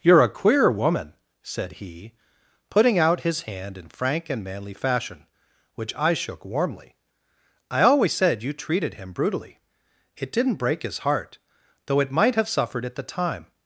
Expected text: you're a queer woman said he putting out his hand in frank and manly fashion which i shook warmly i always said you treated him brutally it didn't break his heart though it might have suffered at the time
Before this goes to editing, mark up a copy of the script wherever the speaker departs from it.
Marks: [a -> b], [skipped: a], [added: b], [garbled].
you're a queer woman said he putting out his hand in frank and manly fashion which i shook warmly i always said you treated him brutally it didn't break his heart though it might have suffered at the time